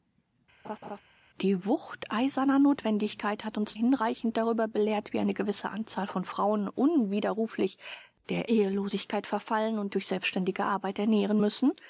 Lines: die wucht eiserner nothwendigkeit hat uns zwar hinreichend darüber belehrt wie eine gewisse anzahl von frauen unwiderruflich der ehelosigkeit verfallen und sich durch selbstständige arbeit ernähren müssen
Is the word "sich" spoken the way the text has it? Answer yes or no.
no